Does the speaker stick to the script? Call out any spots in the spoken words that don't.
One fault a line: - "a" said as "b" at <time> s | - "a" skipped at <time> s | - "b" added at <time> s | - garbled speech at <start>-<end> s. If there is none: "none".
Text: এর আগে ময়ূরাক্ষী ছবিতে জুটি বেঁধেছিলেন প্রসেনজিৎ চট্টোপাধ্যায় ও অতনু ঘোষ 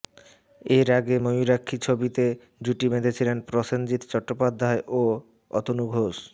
none